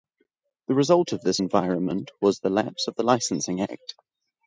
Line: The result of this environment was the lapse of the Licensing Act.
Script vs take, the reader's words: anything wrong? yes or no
no